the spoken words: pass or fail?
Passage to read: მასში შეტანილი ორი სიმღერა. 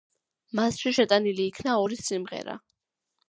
fail